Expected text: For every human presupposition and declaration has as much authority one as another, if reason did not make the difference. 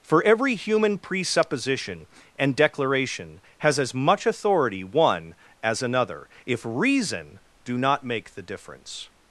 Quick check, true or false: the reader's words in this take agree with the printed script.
false